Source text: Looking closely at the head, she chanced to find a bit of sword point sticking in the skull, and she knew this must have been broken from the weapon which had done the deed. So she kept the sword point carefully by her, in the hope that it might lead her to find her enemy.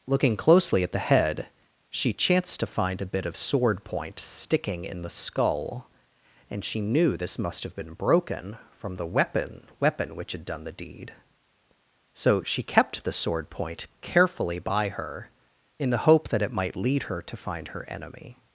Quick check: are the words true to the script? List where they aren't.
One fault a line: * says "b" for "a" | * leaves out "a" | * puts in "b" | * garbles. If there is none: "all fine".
* puts in "weapon"